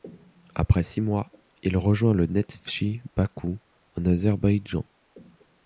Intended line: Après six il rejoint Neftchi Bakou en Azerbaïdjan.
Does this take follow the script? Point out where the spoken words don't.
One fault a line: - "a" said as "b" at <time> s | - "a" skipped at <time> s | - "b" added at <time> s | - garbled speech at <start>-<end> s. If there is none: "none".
- "mois" added at 1.0 s
- "le" added at 2.1 s